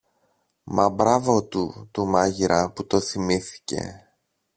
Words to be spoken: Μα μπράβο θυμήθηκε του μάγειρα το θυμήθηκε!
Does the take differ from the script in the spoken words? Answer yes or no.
yes